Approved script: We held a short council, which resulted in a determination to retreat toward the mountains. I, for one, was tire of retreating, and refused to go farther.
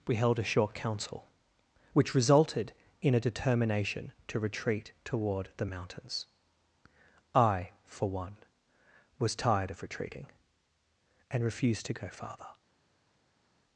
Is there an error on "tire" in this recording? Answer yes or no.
yes